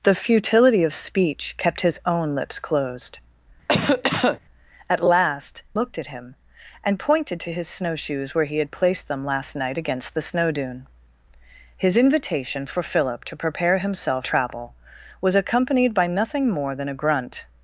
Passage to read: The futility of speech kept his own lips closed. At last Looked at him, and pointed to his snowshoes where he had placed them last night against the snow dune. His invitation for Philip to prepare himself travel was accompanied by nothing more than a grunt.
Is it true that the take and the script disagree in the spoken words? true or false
false